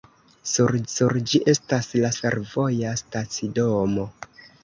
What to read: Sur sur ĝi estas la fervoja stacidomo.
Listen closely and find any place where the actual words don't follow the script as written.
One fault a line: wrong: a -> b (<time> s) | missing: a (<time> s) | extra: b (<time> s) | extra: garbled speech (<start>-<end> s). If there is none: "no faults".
no faults